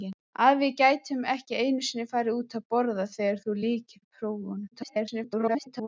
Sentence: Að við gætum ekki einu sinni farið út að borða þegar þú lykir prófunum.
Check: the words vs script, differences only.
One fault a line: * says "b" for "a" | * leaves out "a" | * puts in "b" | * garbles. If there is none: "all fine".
* garbles